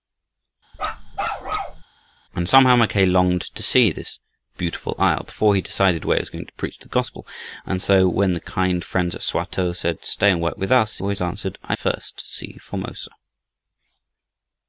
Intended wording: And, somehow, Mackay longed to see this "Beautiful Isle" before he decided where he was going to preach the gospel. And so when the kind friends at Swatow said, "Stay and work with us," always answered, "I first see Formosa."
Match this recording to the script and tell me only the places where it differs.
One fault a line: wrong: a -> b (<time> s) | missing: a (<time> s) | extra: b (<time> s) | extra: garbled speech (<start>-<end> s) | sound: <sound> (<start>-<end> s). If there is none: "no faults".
sound: bark (0.7-1.8 s)